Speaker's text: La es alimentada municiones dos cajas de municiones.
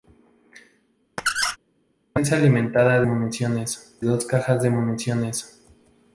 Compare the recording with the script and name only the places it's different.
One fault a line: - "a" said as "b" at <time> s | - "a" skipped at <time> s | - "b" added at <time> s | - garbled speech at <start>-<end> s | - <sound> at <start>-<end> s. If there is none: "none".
- squeak at 1.2-1.6 s